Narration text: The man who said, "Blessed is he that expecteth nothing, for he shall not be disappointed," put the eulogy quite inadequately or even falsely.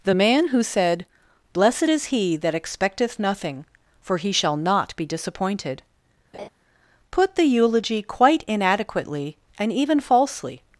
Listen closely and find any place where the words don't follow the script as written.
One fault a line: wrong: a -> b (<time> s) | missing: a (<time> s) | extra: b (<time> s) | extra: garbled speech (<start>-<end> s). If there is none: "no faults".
wrong: or -> and (9.6 s)